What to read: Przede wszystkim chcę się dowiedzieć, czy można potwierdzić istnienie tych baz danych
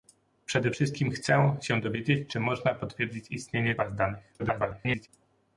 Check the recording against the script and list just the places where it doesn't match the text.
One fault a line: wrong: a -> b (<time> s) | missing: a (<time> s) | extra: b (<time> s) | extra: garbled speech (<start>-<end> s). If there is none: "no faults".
missing: tych (3.7 s)
extra: garbled speech (4.4-5.1 s)